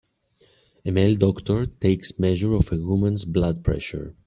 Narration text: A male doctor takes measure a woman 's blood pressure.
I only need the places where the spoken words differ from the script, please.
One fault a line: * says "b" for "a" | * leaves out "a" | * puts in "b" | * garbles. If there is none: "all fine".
* puts in "of"